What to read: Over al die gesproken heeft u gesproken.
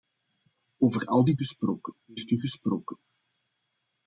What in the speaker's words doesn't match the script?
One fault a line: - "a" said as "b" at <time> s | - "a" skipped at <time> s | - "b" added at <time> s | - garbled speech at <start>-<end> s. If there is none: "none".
none